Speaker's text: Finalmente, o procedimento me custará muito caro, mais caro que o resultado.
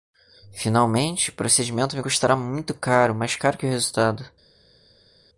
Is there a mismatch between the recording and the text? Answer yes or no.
no